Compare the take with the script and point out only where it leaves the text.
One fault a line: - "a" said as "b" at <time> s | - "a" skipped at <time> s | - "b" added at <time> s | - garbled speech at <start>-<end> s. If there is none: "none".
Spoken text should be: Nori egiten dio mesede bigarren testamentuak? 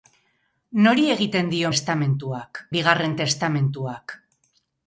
- "mesede" said as "testamentuak" at 1.7 s